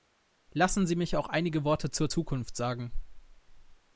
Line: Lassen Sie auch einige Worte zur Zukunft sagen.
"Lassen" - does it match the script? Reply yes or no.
yes